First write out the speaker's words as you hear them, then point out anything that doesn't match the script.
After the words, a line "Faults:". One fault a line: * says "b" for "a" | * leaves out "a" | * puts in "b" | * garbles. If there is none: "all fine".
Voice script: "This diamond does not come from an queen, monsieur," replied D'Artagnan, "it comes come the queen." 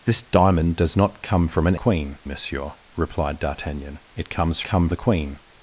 "This diamond does not come from an queen, monsieur," replied D'Artagnan, "it comes come the queen."
Faults:
all fine